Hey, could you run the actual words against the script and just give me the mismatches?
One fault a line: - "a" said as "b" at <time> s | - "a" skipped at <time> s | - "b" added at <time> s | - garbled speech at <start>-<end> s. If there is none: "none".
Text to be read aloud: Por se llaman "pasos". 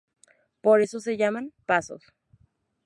- "eso" added at 0.8 s